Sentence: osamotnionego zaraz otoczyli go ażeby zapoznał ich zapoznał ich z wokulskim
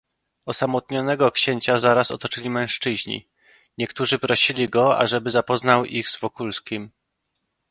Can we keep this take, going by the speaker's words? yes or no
no